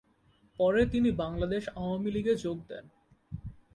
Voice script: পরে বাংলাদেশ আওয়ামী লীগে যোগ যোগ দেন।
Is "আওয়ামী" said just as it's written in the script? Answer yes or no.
yes